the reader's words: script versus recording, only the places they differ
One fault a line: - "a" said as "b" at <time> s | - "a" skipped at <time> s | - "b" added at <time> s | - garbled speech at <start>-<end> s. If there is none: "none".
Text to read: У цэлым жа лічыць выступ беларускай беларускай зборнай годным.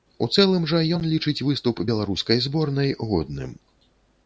- "ён" added at 1.0 s
- "беларускай" skipped at 2.4 s